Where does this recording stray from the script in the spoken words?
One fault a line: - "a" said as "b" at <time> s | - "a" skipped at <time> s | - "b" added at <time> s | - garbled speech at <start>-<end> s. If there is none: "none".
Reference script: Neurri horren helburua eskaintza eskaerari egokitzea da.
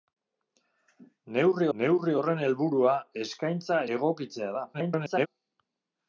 - "neurri" added at 1.8 s
- "eskaerari" skipped at 3.8 s
- garbled speech at 4.7-5.3 s